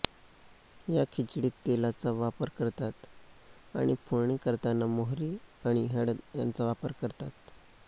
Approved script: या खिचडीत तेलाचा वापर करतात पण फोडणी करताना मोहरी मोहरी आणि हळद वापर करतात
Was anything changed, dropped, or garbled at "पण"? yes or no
yes